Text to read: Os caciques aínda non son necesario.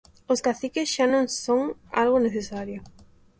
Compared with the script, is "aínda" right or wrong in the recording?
wrong